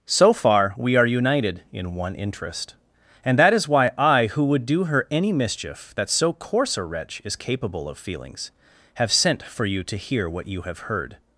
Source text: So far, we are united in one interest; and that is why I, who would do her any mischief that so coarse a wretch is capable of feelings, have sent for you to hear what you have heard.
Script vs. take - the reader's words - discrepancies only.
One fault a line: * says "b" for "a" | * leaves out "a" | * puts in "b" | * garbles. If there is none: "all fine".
all fine